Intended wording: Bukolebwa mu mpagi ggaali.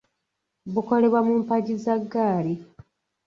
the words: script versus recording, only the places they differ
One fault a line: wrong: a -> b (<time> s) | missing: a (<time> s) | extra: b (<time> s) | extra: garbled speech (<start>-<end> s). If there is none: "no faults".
extra: za (1.8 s)